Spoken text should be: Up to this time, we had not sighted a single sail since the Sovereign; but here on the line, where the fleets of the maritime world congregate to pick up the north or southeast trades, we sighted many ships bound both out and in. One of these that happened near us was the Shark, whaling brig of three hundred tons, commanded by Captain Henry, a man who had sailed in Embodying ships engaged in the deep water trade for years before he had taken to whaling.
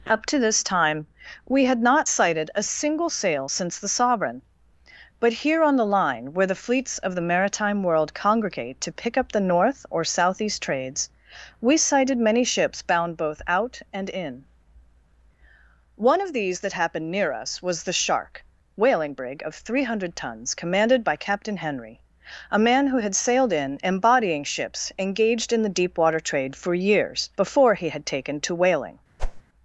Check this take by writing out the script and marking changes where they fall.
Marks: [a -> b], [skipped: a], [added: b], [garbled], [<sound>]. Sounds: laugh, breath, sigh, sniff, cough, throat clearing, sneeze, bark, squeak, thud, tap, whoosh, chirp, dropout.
Up to this time, we had not sighted a single sail since the Sovereign; but here on the line, where the fleets of the maritime world congregate to pick up the north or southeast trades, we sighted many ships bound both out and in. One of these that happened near us was the Shark, whaling brig of three hundred tons, commanded by Captain Henry, a man who had sailed in Embodying ships engaged in the deep water trade for years before he had taken to whaling. [whoosh]